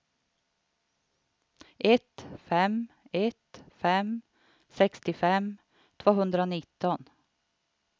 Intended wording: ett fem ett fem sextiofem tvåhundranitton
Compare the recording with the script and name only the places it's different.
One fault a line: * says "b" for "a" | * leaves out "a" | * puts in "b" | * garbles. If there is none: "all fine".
all fine